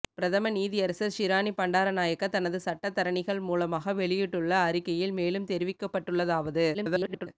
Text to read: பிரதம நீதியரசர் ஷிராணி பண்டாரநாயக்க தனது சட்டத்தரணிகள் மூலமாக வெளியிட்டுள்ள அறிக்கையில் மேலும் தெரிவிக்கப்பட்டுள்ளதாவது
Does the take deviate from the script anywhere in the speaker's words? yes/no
yes